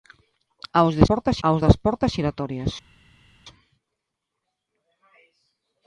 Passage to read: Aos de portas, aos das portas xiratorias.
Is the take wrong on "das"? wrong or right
right